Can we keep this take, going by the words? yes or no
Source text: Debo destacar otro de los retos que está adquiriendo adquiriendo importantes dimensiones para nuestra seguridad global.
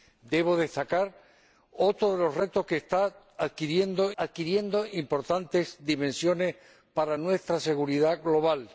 yes